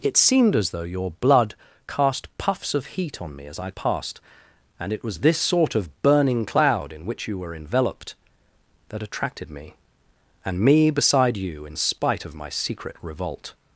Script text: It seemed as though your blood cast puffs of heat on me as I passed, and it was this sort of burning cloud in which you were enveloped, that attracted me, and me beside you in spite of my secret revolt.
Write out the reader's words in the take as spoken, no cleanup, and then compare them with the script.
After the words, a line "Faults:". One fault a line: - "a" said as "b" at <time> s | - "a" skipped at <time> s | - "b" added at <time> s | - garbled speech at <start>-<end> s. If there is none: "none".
It seemed as though your blood cast puffs of heat on me as I passed, and it was this sort of burning cloud in which you were enveloped, that attracted me, and me beside you in spite of my secret revolt.
Faults:
none